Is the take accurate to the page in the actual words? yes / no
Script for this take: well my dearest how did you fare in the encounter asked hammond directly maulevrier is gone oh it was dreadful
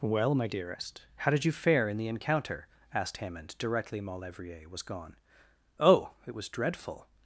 no